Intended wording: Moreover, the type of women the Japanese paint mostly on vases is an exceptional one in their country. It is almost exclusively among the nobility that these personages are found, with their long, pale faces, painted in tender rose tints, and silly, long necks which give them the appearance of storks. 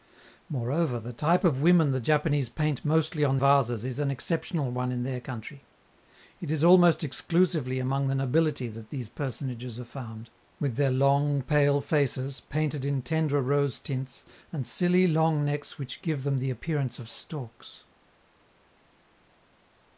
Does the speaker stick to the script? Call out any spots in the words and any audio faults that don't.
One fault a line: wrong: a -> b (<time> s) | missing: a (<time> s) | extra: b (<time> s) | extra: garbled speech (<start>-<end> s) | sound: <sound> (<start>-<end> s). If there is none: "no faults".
no faults